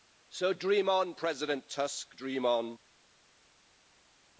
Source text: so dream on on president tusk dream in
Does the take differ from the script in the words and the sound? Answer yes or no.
yes